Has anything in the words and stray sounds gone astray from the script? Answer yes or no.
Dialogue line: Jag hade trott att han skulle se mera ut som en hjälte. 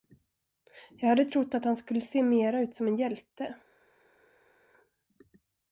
no